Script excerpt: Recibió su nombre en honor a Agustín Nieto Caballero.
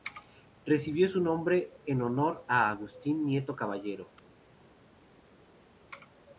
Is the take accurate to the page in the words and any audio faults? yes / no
yes